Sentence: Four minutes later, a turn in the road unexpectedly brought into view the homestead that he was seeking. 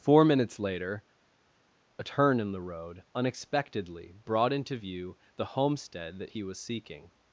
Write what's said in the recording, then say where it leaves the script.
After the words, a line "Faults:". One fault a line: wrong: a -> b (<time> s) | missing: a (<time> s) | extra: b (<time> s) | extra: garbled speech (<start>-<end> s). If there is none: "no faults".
Four minutes later, a turn in the road unexpectedly brought into view the homestead that he was seeking.
Faults:
no faults